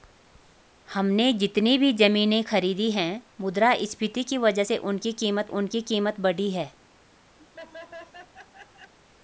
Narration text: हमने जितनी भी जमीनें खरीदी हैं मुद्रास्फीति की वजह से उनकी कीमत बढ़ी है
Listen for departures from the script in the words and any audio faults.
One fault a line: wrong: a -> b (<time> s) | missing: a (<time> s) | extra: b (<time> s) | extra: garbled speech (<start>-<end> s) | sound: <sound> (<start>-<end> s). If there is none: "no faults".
extra: उनकी कीमत (5.5 s)
sound: laugh (7.4-8.9 s)